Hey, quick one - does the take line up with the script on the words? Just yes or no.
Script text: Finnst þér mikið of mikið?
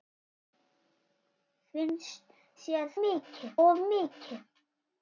yes